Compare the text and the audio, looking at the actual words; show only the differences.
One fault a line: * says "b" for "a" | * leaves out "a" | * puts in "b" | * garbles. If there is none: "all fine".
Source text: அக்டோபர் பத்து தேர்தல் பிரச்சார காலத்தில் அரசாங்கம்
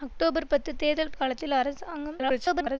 * leaves out "பிரச்சார"
* garbles